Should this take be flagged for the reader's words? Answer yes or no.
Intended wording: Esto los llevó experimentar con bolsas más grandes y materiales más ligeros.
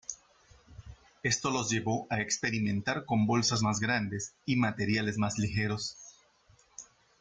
yes